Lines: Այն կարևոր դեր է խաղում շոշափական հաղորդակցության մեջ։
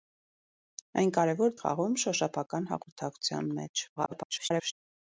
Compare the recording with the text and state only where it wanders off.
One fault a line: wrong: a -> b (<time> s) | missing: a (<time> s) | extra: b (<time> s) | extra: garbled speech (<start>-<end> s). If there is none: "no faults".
missing: դեր (1.5 s)
extra: garbled speech (4.0-4.7 s)